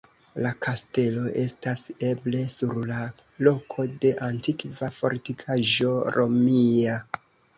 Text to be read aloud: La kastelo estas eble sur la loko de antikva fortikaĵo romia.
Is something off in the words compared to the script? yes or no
no